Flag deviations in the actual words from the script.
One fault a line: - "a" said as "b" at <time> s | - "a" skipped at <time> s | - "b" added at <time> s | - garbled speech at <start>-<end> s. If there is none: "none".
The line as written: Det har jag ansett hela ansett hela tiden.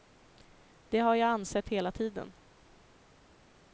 - "ansett hela" skipped at 1.9 s